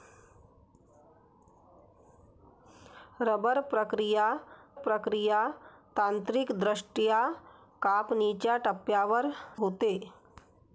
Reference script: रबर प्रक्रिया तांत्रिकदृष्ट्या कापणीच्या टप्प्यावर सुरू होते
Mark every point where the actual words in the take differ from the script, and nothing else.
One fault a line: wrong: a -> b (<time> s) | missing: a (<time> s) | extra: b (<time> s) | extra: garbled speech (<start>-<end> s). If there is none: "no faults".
extra: प्रक्रिया (4.8 s)
missing: सुरू (9.3 s)